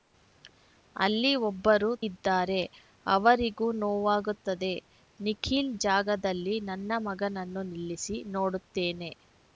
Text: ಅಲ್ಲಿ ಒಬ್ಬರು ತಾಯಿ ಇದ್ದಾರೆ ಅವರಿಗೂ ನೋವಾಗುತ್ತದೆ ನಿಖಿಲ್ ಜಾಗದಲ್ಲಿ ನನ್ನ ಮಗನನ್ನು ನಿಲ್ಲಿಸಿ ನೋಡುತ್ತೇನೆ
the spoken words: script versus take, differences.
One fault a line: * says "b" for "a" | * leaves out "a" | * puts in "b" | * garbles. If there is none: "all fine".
* leaves out "ತಾಯಿ"